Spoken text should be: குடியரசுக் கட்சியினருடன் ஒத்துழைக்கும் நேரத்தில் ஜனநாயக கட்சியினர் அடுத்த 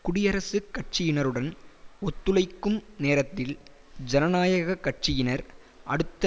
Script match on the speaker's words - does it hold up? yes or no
yes